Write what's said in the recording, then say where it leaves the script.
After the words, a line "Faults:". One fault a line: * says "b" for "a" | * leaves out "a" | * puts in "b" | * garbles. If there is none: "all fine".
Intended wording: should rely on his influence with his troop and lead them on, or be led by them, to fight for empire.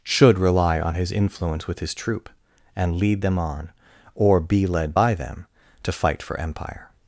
should rely on his influence with his troop and lead them on, or be led by them, to fight for empire.
Faults:
all fine